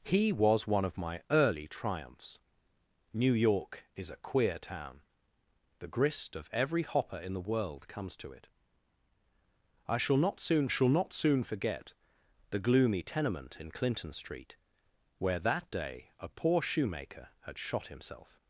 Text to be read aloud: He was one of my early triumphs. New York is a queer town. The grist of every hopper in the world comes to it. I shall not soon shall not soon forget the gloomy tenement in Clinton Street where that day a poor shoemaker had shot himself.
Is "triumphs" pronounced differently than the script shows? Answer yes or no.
no